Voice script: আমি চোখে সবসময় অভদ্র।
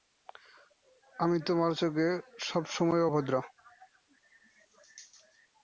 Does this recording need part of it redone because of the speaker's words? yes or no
yes